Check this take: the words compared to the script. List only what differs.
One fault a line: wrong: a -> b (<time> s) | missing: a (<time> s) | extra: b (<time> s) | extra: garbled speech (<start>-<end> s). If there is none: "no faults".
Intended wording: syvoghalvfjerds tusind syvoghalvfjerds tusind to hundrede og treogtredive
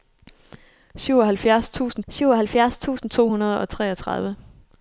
no faults